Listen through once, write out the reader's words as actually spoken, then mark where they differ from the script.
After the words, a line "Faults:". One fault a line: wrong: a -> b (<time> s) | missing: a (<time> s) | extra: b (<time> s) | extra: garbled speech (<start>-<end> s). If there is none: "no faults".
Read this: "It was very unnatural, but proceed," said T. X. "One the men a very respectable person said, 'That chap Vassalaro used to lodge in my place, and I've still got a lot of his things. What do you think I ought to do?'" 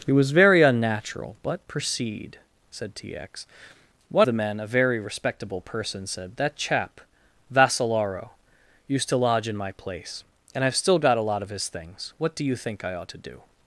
"It was very unnatural, but proceed," said T. X. "One the men a very respectable person said, 'That chap Vassalaro used to lodge in my place, and I've still got a lot of his things. What do you think I ought to do?'"
Faults:
no faults